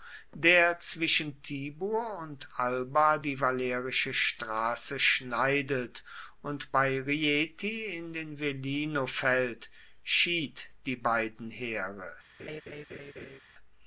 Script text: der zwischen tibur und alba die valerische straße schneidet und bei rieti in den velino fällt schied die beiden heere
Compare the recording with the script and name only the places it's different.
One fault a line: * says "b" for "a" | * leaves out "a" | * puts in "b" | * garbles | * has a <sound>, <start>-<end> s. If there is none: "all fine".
* has a laugh, 12.4-13.4 s